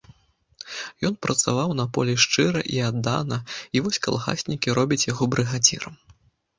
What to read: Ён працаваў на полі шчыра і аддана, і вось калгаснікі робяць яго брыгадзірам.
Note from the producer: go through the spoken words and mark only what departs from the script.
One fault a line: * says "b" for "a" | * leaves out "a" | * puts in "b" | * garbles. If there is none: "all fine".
all fine